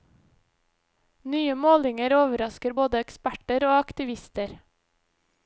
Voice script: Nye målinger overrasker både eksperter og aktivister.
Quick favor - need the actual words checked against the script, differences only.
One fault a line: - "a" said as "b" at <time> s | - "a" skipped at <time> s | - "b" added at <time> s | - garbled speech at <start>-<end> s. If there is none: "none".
none